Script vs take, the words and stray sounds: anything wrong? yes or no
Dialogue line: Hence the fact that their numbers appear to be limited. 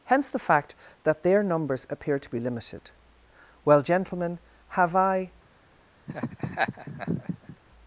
yes